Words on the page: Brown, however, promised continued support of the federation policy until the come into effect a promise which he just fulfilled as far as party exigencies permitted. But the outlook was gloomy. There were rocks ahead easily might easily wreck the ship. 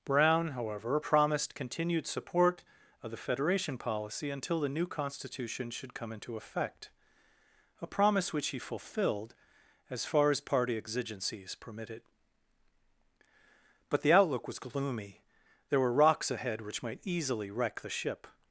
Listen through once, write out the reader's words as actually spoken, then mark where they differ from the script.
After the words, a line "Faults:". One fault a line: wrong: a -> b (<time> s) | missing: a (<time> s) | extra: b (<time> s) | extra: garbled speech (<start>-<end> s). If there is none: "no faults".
Brown, however, promised continued support of the federation policy until the new constitution should come into effect a promise which he fulfilled as far as party exigencies permitted. But the outlook was gloomy. There were rocks ahead which might easily wreck the ship.
Faults:
extra: new constitution should (4.7 s)
missing: just (8.6 s)
wrong: easily -> which (16.6 s)